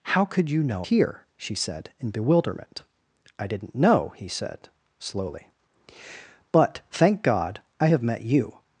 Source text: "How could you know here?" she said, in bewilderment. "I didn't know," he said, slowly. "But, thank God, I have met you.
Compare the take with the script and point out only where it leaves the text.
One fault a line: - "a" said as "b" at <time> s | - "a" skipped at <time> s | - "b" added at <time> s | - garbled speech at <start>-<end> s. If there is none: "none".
none